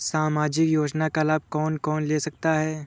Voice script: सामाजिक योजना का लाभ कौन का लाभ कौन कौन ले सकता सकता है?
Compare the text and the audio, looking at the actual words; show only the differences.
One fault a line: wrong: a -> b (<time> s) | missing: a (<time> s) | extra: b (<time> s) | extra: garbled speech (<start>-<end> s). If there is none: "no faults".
missing: का लाभ (1.8 s)
missing: कौन (2.0 s)
missing: सकता (2.5 s)